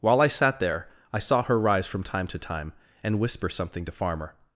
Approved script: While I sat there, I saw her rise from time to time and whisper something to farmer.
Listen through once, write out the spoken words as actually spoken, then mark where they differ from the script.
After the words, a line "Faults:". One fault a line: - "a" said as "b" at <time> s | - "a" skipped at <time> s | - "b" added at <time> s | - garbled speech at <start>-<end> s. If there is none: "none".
While I sat there, I saw her rise from time to time and whisper something to farmer.
Faults:
none